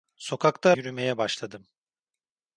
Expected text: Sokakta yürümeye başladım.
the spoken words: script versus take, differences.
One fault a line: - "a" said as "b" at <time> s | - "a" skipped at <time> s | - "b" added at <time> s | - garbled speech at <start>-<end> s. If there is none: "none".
none